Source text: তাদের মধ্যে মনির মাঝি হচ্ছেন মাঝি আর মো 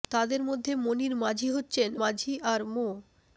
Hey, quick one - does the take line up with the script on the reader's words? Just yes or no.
yes